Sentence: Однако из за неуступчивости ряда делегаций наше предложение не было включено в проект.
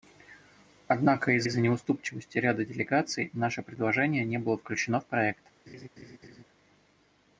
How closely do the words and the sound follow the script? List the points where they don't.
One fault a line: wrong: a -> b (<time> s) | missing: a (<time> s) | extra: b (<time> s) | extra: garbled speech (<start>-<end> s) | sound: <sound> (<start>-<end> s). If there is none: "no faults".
extra: из (1.4 s)
sound: laugh (5.7-6.4 s)